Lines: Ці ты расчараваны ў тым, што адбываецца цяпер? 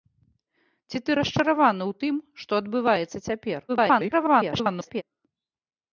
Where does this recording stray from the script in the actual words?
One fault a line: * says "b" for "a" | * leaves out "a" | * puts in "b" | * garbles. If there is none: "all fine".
* garbles